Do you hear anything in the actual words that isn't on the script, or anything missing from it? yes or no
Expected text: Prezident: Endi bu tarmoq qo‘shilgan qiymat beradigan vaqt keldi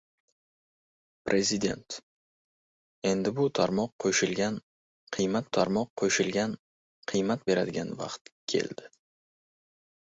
yes